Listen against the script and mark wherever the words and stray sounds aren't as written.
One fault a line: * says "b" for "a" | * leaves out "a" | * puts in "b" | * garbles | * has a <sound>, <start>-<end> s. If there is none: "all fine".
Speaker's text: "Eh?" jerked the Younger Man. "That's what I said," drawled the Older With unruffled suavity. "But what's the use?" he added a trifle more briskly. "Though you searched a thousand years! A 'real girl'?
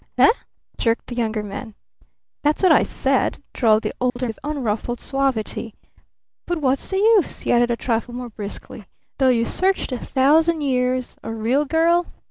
* has a dropout, 4.1-4.2 s